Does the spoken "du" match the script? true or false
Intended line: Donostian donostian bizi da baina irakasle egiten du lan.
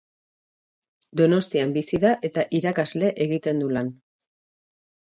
true